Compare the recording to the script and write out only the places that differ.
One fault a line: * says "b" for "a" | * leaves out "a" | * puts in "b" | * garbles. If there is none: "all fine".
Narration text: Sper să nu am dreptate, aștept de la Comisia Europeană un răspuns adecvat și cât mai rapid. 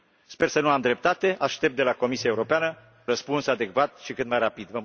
* leaves out "un"